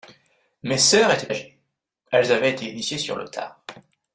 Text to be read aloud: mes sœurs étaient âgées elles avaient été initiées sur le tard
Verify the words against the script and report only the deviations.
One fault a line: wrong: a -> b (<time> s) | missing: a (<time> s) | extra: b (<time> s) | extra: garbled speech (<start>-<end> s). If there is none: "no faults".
no faults